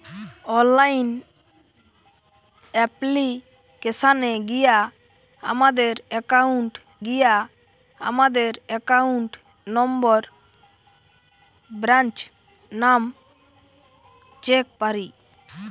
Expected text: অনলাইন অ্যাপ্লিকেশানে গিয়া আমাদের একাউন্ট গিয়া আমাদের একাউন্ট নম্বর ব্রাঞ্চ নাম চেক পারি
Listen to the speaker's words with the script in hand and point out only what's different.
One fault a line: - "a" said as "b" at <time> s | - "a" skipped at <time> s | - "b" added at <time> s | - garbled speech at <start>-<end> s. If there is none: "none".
none